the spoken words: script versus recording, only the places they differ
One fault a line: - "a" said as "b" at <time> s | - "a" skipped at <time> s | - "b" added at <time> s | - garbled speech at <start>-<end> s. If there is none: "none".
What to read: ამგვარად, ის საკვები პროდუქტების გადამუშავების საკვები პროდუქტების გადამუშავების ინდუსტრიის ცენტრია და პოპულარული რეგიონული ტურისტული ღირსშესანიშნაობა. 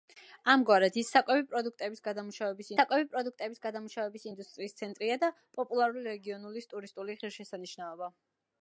none